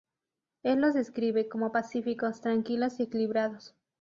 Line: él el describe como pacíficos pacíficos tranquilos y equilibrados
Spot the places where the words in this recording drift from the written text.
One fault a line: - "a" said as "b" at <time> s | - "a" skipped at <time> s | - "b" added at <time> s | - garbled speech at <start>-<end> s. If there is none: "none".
- "el" said as "los" at 0.8 s
- "pacíficos" skipped at 2.4 s